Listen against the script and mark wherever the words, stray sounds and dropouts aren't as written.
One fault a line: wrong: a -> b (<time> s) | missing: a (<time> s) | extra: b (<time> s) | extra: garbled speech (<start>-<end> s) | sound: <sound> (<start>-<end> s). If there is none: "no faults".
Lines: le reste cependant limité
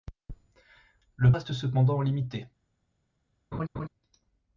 sound: laugh (3.5-3.9 s)